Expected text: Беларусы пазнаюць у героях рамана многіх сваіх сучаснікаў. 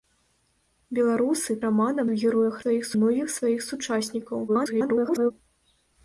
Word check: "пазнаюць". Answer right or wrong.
wrong